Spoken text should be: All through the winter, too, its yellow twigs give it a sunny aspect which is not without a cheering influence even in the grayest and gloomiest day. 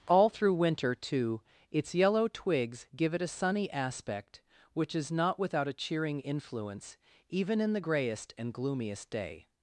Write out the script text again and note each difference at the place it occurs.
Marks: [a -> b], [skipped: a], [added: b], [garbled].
All through [skipped: the] winter, too, its yellow twigs give it a sunny aspect which is not without a cheering influence even in the grayest and gloomiest day.